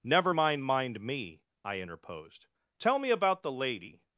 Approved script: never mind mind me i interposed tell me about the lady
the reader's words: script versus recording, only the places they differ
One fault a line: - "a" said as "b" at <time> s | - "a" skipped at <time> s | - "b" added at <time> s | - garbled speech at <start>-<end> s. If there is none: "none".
none